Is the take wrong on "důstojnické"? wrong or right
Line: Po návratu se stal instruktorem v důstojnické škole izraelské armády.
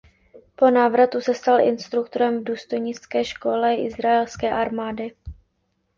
right